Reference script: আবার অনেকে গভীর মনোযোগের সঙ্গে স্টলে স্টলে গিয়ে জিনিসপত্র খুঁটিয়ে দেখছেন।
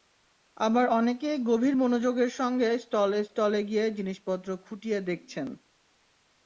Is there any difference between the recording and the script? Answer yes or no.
no